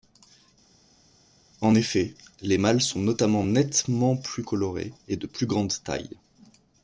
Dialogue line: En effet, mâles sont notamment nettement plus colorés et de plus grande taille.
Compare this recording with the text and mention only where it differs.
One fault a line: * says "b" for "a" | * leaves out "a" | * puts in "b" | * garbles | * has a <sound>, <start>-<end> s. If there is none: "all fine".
* puts in "les"